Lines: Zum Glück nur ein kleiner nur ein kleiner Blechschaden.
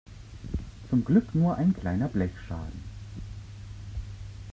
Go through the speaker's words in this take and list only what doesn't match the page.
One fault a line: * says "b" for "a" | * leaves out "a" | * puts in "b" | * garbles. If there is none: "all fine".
* leaves out "nur ein kleiner"